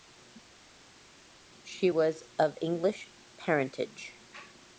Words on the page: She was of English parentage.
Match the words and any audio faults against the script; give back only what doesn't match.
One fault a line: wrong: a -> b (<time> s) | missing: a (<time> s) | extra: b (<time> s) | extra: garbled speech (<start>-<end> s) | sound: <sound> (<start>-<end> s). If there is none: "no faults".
no faults